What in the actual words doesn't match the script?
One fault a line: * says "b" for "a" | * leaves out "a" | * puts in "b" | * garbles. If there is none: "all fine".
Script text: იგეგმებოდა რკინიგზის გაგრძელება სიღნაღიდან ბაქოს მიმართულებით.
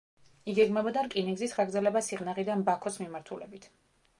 all fine